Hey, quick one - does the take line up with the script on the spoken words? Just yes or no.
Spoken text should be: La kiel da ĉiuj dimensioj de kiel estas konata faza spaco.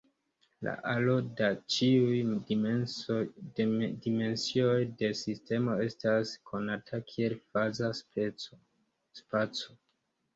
no